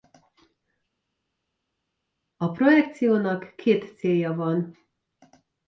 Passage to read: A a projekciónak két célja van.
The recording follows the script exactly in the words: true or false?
false